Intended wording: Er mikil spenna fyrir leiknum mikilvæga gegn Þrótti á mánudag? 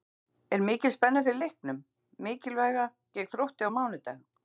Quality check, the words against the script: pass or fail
pass